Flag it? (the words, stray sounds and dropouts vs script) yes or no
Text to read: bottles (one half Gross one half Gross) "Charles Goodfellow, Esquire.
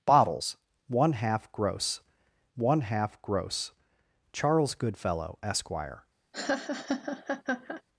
yes